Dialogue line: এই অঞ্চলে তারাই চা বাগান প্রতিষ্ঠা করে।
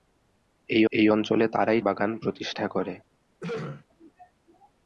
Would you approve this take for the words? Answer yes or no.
no